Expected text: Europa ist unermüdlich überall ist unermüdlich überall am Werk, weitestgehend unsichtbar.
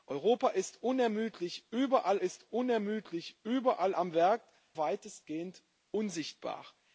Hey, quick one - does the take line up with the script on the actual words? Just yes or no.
yes